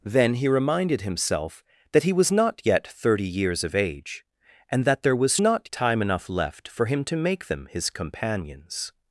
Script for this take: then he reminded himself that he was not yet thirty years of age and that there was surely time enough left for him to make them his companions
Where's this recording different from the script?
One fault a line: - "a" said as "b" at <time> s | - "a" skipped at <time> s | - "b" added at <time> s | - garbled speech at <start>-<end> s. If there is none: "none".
- "surely" said as "not" at 5.4 s